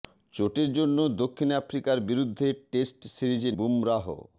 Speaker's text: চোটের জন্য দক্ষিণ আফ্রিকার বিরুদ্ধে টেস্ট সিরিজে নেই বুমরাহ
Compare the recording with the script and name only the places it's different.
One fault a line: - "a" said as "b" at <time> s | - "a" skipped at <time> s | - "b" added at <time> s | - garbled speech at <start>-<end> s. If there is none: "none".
- "নেই" skipped at 3.5 s